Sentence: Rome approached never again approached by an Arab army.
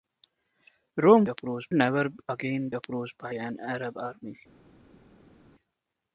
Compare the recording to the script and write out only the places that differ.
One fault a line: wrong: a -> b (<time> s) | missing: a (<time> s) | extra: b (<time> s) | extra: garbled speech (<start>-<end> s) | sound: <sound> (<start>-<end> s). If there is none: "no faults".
no faults